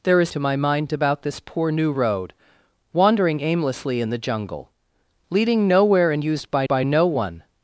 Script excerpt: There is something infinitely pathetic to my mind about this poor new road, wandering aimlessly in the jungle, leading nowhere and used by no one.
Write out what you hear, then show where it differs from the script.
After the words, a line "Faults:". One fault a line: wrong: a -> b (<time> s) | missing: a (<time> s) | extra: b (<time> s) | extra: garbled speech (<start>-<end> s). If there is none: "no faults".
There is to my mind about this poor new road, wandering aimlessly in the jungle, leading nowhere and used by by no one.
Faults:
missing: something infinitely pathetic (0.3 s)
extra: by (6.7 s)